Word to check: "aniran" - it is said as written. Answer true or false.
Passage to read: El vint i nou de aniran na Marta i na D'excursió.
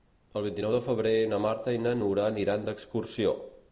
false